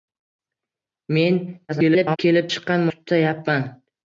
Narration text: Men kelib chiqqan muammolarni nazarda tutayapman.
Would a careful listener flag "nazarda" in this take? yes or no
yes